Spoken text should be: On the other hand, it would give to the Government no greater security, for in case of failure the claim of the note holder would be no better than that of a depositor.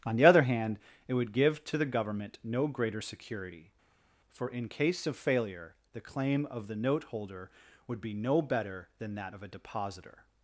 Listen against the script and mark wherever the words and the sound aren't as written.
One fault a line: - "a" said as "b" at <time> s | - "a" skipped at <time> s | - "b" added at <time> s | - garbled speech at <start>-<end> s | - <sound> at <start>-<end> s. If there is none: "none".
none